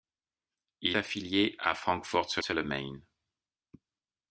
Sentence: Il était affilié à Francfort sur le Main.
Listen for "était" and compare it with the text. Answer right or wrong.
wrong